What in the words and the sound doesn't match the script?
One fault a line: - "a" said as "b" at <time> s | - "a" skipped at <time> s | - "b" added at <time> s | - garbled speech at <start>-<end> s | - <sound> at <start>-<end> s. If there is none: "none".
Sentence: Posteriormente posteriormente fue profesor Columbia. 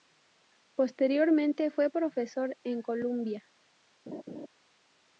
- "posteriormente" skipped at 1.7 s
- "en" added at 2.6 s
- laugh at 4.1-4.5 s